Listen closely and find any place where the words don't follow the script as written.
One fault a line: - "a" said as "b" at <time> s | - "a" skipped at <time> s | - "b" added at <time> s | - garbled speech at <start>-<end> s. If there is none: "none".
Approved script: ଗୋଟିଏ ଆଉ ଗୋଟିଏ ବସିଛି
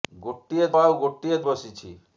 none